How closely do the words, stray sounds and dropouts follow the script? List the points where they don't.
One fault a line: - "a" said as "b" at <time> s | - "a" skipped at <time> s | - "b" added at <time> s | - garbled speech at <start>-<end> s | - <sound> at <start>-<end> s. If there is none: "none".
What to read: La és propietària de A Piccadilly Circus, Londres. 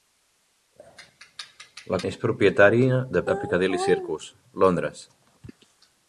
none